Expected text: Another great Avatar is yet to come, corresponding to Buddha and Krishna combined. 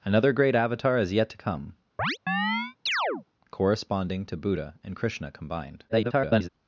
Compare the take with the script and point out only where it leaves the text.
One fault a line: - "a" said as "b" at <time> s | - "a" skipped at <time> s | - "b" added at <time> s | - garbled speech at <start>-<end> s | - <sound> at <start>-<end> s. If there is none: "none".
- chirp at 2.0-3.2 s
- garbled speech at 5.9-6.5 s